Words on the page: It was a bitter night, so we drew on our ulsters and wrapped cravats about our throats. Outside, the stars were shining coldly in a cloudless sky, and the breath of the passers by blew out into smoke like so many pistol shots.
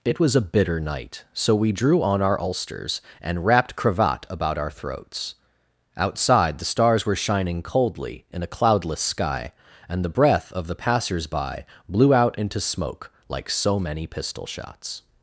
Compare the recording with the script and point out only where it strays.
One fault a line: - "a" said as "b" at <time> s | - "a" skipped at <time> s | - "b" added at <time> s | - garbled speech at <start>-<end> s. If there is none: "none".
- "cravats" said as "cravat" at 3.7 s